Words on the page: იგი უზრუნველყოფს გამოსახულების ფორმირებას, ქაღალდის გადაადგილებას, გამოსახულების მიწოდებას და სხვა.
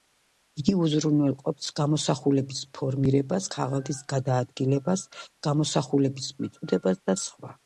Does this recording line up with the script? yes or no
yes